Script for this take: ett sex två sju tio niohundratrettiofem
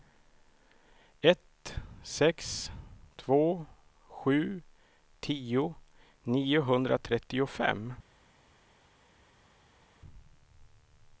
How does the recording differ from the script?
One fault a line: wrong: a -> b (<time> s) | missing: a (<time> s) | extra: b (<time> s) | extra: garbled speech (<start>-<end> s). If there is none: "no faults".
no faults